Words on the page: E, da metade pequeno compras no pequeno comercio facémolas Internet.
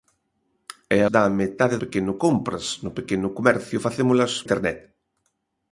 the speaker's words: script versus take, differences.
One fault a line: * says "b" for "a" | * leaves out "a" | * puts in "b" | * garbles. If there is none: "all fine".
all fine